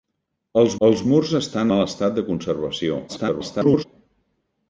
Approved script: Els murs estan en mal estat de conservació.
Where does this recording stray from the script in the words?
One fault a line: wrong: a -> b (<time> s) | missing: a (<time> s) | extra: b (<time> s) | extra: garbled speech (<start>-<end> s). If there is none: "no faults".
extra: els (0.9 s)
missing: en (1.7 s)
extra: garbled speech (3.1-3.8 s)